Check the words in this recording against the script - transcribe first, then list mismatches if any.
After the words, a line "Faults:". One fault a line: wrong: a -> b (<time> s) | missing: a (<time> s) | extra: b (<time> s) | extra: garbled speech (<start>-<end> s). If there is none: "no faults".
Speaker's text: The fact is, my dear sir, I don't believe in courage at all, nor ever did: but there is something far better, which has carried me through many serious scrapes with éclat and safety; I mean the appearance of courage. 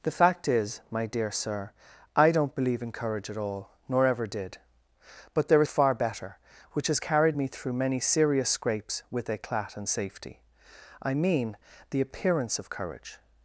The fact is, my dear sir, I don't believe in courage at all, nor ever did: but there is far better, which has carried me through many serious scrapes with éclat and safety; I mean the appearance of courage.
Faults:
missing: something (5.7 s)